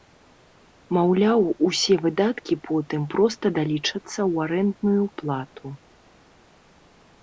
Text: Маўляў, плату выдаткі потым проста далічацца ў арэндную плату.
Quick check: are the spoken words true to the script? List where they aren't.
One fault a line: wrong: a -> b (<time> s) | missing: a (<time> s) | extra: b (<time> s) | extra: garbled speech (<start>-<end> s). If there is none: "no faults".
wrong: плату -> усе (1.7 s)